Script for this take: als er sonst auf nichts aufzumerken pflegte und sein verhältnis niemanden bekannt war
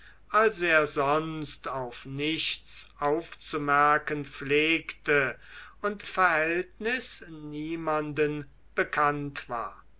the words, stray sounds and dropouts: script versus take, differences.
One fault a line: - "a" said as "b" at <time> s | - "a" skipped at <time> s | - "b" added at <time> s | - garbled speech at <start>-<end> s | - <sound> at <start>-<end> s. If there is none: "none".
- "sein" skipped at 6.0 s